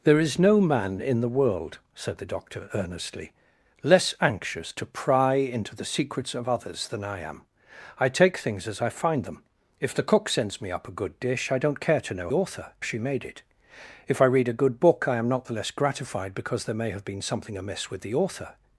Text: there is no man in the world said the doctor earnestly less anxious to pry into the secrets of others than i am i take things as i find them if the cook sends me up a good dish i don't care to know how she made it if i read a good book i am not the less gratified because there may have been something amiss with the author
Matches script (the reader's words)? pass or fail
fail